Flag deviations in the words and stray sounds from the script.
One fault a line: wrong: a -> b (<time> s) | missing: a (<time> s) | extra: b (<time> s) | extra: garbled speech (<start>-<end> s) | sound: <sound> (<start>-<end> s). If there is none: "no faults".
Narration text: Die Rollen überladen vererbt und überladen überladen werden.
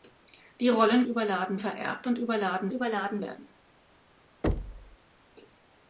sound: thud (4.4-5.0 s)